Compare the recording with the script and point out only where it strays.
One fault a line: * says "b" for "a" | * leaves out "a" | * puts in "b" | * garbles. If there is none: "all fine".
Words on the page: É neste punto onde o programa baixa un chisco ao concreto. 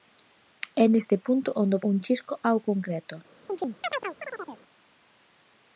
* leaves out "programa baixa"